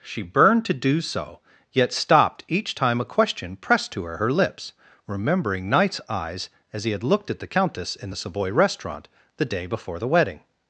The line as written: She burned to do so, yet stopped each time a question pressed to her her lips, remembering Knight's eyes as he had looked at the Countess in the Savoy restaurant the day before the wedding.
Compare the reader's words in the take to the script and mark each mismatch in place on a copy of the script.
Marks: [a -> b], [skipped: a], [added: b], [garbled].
She burned to do so, yet stopped each time a question pressed to her her lips, remembering Knight's eyes as he had looked at the Countess in the Savoy restaurant the day before the wedding.